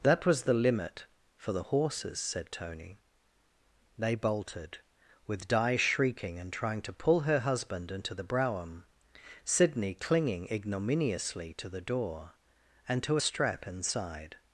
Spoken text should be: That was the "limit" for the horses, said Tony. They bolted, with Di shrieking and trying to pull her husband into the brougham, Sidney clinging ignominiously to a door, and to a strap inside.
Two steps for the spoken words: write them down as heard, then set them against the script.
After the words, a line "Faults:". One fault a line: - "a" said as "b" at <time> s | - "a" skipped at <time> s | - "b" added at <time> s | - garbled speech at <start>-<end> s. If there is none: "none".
That was the "limit" for the horses, said Tony. They bolted, with Di shrieking and trying to pull her husband into the brougham, Sidney clinging ignominiously to the door, and to a strap inside.
Faults:
- "a" said as "the" at 11.7 s